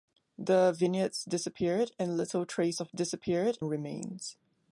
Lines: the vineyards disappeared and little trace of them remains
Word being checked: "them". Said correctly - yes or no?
no